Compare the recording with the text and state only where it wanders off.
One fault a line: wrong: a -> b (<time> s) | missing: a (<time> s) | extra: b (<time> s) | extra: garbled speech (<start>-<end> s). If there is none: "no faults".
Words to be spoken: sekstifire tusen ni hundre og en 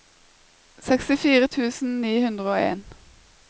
no faults